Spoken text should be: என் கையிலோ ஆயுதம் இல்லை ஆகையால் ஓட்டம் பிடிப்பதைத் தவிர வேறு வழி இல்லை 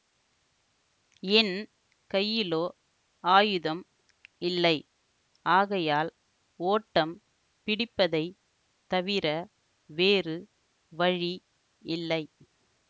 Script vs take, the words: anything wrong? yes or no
no